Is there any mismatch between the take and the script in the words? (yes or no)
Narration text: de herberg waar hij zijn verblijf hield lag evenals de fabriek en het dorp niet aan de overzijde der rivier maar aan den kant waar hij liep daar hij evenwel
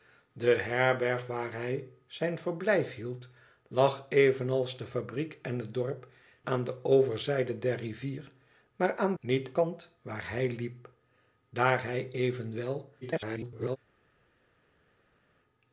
yes